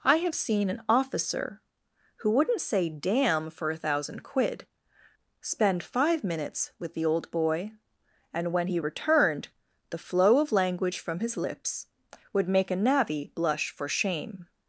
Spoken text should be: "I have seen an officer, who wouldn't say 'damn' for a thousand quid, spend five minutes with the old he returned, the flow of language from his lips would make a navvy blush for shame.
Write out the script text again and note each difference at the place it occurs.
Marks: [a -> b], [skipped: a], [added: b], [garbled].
"I have seen an officer, who wouldn't say 'damn' for a thousand quid, spend five minutes with the old [added: boy and when] he returned, the flow of language from his lips would make a navvy blush for shame.